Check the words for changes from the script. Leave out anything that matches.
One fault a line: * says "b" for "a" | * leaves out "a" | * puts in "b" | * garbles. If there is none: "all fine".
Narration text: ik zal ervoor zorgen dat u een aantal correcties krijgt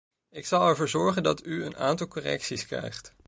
all fine